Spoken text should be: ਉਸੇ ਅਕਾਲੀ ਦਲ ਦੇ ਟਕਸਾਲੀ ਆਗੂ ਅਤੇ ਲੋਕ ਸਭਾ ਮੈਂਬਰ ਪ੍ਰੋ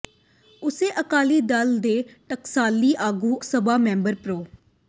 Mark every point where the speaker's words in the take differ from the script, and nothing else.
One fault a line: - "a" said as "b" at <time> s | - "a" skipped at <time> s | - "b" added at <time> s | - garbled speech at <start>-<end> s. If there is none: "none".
- "ਅਤੇ ਲੋਕ" skipped at 3.4 s